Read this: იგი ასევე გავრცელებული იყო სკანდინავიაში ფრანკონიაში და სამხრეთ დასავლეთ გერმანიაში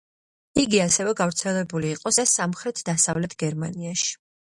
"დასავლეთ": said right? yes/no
yes